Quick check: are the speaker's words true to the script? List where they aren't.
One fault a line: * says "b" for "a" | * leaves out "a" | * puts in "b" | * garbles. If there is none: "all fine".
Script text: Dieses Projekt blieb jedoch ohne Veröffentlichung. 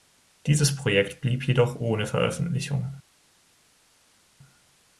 all fine